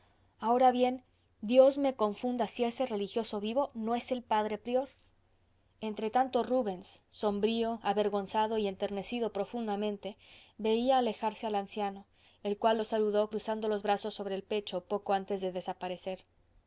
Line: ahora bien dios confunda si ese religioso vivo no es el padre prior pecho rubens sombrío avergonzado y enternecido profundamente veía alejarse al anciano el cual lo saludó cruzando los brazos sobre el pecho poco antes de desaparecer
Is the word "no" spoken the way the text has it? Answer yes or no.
yes